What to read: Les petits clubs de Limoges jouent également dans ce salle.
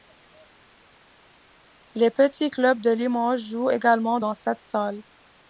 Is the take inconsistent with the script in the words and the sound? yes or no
yes